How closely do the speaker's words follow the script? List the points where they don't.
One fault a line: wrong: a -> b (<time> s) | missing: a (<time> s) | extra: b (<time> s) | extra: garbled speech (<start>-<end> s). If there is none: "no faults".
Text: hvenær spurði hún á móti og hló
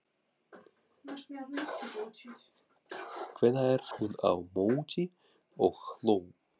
missing: spurði (3.9 s)